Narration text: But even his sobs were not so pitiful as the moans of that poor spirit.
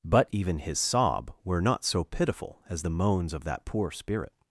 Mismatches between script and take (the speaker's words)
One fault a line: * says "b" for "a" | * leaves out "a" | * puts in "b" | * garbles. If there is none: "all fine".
* says "sob" for "sobs"